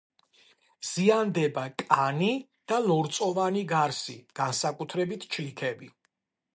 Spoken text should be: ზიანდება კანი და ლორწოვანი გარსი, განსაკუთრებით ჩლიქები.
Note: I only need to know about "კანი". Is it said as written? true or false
true